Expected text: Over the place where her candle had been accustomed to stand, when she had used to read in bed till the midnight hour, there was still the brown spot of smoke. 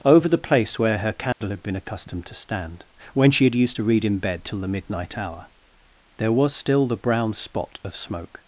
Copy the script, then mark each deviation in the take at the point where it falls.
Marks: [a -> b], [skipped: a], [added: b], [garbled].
Over the place where her candle had been accustomed to stand, when she had used to read in bed till the midnight hour, there was still the brown spot of smoke.